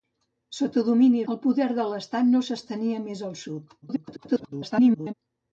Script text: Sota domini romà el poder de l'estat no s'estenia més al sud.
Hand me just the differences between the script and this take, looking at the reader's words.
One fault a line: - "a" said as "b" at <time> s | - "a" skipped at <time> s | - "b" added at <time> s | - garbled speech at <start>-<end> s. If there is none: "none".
- "romà" skipped at 1.2 s
- garbled speech at 3.8-5.1 s